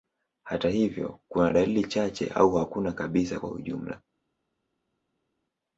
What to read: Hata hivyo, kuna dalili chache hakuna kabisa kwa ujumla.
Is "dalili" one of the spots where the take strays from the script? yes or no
no